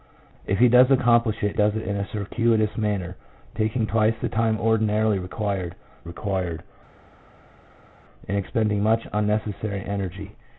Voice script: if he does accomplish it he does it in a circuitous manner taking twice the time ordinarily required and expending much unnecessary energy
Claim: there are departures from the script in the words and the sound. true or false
true